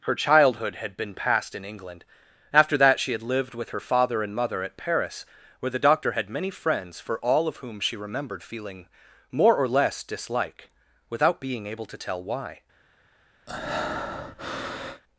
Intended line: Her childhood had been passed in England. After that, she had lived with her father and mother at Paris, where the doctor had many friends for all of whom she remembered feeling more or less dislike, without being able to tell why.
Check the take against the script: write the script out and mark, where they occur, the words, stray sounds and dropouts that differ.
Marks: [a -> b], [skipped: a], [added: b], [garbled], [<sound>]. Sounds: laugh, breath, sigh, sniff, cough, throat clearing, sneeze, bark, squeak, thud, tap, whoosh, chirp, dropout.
Her childhood had been passed in England. After that, she had lived with her father and mother at Paris, where the doctor had many friends for all of whom she remembered feeling more or less dislike, without being able to tell why. [breath]